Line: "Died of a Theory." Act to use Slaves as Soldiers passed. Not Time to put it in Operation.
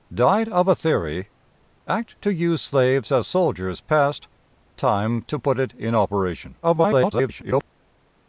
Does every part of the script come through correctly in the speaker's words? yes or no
no